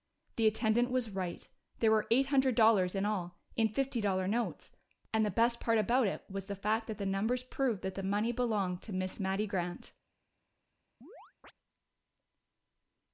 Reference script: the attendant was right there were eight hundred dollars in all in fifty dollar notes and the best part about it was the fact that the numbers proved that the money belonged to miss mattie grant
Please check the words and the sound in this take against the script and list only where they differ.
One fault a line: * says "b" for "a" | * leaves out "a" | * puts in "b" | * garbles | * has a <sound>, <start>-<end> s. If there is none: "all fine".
* has a chirp, 11.0-11.5 s